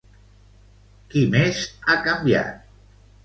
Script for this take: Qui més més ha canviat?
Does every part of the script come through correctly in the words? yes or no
no